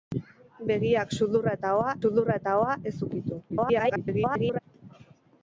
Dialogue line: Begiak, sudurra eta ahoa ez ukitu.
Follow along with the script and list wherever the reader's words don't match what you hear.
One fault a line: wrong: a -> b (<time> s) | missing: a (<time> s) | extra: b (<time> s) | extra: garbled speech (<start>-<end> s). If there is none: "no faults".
extra: sudurra eta ahoa (2.0 s)
extra: garbled speech (3.5-4.6 s)